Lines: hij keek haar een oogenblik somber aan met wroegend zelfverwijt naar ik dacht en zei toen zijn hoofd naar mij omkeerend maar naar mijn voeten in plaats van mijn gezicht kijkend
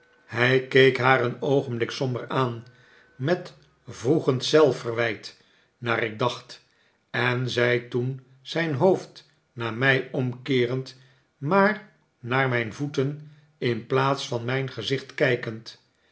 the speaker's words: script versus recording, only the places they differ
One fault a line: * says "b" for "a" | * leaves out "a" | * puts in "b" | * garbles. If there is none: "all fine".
all fine